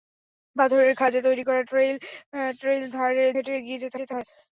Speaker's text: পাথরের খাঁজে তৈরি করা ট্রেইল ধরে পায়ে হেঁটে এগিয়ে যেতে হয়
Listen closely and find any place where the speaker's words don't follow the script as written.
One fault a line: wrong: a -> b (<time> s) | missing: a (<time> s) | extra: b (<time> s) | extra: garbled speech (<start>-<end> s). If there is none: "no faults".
missing: ধরে পায়ে (2.8 s)
extra: যেতে (4.0 s)